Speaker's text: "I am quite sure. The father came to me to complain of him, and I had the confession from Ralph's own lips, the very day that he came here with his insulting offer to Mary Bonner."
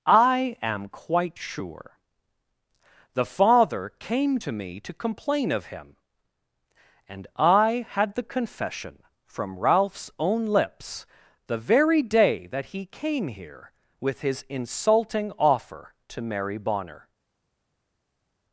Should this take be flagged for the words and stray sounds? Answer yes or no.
no